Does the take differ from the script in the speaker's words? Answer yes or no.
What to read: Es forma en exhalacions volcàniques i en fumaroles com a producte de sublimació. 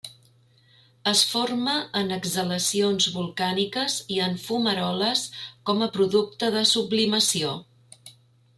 no